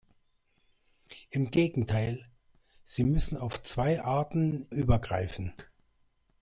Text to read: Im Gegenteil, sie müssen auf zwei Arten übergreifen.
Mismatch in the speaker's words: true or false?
false